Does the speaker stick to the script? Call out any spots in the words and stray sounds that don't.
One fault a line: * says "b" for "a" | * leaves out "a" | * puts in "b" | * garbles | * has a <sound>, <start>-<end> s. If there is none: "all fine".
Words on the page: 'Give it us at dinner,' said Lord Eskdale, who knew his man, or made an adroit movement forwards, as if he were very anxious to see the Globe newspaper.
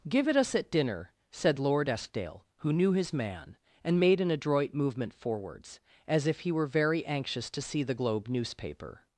* says "and" for "or"